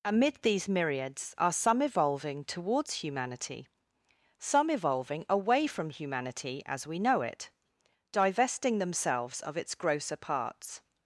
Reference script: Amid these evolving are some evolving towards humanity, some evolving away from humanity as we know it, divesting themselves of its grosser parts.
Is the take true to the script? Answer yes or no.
no